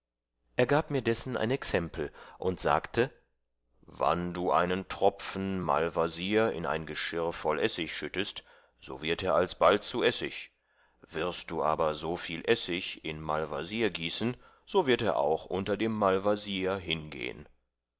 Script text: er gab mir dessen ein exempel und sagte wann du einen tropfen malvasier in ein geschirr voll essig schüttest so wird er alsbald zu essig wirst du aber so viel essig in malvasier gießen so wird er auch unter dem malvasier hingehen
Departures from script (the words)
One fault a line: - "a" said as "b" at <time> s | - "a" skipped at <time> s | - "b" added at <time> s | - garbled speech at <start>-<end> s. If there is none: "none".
none